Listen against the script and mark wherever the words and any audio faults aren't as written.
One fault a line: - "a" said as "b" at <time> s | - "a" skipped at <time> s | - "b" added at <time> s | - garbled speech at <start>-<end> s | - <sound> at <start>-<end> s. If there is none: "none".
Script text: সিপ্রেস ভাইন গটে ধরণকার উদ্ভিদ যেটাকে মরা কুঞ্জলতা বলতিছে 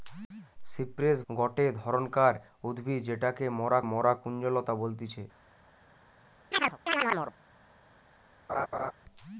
- "ভাইন" skipped at 1.2 s
- "মরা" added at 3.9 s
- chirp at 6.5-7.3 s
- laugh at 8.5-8.9 s